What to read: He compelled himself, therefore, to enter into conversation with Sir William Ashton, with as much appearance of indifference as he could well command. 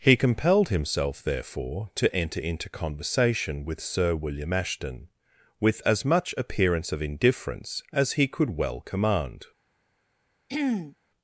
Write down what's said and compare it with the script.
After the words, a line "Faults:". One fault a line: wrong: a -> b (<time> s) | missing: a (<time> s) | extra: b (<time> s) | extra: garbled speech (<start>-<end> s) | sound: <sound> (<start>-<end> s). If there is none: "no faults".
He compelled himself, therefore, to enter into conversation with Sir William Ashton, with as much appearance of indifference as he could well command.
Faults:
sound: throat clearing (10.5-11.0 s)